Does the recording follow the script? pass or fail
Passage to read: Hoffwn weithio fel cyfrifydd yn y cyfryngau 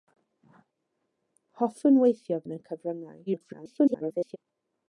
fail